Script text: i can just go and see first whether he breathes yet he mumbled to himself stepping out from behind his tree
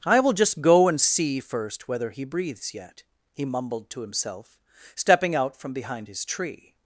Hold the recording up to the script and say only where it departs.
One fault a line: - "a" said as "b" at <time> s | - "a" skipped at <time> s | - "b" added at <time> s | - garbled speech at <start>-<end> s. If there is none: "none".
- "can" said as "will" at 0.2 s